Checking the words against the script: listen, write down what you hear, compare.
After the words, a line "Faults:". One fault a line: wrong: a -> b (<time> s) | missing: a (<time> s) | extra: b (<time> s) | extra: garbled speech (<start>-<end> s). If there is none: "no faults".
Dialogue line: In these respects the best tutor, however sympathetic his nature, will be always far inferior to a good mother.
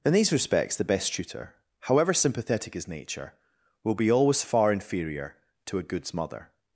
In these respects the best tutor, however sympathetic his nature, will be always far inferior to a goods mother.
Faults:
wrong: good -> goods (5.8 s)